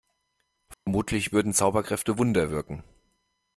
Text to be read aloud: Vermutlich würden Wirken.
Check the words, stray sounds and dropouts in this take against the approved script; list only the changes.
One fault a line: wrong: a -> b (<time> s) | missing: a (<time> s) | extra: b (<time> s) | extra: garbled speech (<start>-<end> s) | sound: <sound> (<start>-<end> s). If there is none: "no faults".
sound: dropout (0.7-0.9 s)
extra: Zauberkräfte Wunder (1.5 s)